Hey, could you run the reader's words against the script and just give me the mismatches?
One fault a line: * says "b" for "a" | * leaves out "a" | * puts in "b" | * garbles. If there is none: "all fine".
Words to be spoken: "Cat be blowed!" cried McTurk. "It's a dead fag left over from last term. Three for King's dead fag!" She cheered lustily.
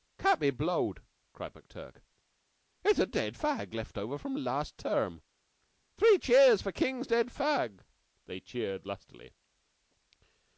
* puts in "cheers"
* says "They" for "She"